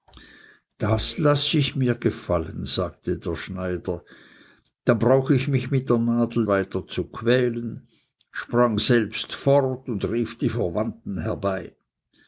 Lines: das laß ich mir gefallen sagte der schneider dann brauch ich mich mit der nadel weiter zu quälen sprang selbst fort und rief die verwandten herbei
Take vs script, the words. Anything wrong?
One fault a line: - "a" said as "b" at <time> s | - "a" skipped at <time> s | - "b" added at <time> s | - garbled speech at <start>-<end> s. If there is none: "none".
none